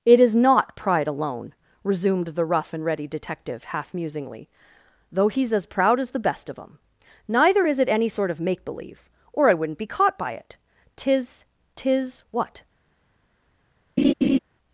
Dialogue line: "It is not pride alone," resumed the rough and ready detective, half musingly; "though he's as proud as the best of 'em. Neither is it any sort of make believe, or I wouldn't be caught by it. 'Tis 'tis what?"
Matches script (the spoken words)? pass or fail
pass